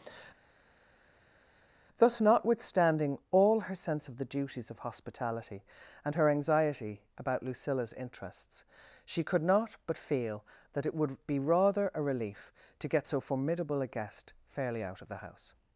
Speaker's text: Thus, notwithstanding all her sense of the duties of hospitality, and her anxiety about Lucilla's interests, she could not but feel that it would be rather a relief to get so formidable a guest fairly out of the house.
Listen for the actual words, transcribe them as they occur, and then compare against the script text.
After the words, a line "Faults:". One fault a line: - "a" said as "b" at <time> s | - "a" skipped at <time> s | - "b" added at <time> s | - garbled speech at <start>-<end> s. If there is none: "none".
Thus, notwithstanding all her sense of the duties of hospitality, and her anxiety about Lucilla's interests, she could not but feel that it would be rather a relief to get so formidable a guest fairly out of the house.
Faults:
none